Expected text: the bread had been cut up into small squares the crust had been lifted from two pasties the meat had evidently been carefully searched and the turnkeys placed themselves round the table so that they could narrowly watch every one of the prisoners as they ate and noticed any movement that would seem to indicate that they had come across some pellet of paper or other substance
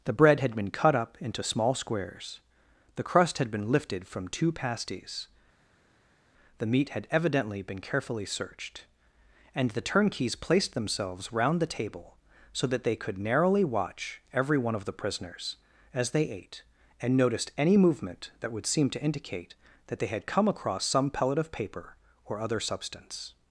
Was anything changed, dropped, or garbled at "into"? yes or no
no